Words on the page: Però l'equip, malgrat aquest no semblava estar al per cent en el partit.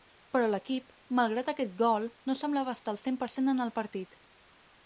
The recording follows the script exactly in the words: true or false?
false